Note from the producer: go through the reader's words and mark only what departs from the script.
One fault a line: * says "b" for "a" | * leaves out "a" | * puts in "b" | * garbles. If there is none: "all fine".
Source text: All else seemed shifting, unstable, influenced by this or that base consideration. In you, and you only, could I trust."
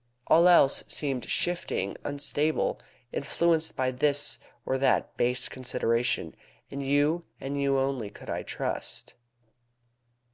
all fine